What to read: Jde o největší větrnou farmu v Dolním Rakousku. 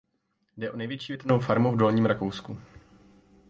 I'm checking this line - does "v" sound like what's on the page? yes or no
yes